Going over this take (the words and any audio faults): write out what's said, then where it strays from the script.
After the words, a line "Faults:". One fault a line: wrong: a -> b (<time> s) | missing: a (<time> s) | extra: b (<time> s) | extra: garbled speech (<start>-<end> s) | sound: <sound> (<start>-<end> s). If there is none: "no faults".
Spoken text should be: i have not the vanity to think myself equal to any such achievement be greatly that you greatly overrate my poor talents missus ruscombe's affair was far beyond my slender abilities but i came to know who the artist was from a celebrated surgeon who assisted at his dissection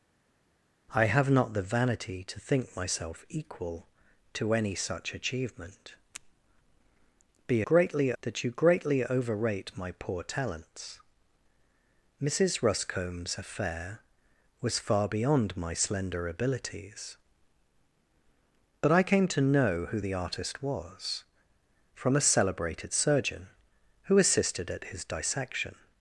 i have not the vanity to think myself equal to any such achievement be greatly that you greatly overrate my poor talents missus ruscombe's affair was far beyond my slender abilities but i came to know who the artist was from a celebrated surgeon who assisted at his dissection
Faults:
no faults